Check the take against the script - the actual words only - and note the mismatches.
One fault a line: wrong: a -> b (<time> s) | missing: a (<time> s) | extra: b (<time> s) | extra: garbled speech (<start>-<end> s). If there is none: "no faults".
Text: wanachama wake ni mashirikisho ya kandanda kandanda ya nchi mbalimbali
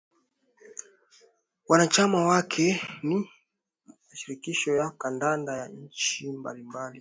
missing: kandanda (5.6 s)